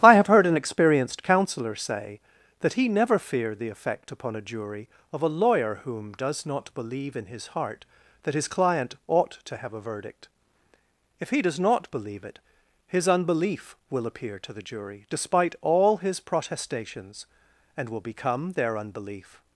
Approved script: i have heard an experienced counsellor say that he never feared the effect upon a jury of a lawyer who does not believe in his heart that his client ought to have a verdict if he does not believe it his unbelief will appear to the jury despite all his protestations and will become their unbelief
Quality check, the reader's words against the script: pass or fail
fail